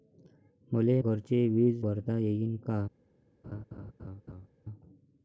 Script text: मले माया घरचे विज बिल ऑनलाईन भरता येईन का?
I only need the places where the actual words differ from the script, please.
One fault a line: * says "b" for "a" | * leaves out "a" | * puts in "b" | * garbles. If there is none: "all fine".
* leaves out "माया"
* leaves out "बिल ऑनलाईन"